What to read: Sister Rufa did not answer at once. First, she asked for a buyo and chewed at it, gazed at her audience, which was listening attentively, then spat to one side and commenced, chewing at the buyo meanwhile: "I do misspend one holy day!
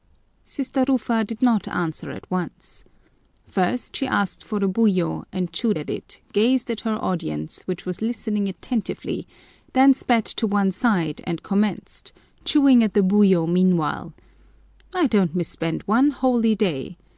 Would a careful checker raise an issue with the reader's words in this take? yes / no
yes